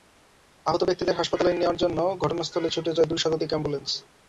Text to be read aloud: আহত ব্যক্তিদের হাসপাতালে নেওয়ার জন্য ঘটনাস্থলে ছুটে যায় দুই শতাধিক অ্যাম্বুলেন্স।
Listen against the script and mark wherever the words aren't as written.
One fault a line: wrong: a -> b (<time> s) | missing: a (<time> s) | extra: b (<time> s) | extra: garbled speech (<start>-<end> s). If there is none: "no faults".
no faults